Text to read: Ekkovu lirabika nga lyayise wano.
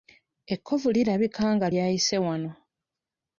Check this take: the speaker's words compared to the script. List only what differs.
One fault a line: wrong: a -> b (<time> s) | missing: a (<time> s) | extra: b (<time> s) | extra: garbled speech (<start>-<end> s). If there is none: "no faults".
no faults